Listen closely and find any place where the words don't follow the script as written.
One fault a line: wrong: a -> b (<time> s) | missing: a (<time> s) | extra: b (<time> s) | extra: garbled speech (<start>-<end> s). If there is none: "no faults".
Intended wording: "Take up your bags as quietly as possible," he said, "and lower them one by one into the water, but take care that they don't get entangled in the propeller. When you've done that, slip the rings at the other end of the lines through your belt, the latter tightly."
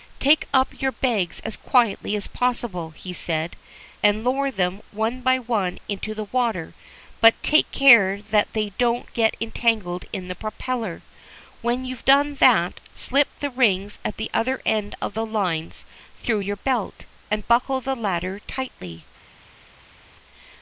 extra: and buckle (17.3 s)